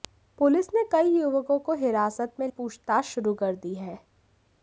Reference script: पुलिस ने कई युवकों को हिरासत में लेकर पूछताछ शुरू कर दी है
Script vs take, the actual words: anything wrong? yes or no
yes